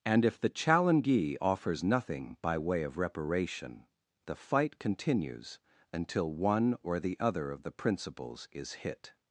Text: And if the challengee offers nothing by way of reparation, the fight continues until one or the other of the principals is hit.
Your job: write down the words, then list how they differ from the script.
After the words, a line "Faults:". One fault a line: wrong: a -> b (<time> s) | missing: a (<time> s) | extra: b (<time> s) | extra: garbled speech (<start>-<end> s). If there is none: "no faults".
And if the challengee offers nothing by way of reparation, the fight continues until one or the other of the principals is hit.
Faults:
no faults